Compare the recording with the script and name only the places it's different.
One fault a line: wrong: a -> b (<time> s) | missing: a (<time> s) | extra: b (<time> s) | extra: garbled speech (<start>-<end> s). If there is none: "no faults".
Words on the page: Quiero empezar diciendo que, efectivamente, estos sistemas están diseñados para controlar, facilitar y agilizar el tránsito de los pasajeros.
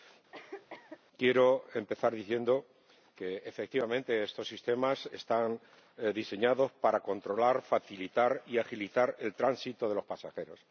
no faults